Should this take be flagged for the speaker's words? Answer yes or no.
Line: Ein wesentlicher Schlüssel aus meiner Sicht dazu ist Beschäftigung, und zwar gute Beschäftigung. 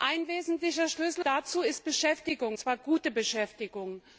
yes